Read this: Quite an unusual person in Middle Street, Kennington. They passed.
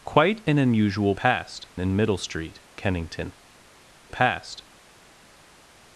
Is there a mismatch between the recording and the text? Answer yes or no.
yes